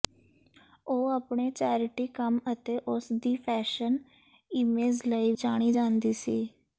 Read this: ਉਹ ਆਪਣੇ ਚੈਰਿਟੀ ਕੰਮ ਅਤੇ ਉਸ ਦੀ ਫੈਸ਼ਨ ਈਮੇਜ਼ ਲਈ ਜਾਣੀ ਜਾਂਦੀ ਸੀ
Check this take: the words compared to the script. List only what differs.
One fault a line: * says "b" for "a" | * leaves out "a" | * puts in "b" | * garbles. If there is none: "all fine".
all fine